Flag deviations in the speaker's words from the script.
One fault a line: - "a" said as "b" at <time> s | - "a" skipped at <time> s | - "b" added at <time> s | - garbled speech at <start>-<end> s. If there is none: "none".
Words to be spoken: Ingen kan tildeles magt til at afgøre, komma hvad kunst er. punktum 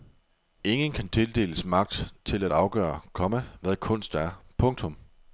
none